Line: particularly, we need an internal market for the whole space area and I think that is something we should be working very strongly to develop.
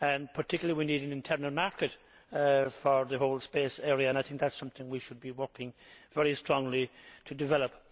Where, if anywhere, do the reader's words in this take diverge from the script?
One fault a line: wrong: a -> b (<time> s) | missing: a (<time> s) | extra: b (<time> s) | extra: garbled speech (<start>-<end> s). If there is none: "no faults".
no faults